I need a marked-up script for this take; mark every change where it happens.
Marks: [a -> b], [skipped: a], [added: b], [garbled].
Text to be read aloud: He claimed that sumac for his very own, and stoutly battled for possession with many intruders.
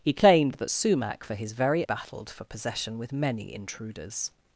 He claimed that sumac for his very [skipped: own, and stoutly] battled for possession with many intruders.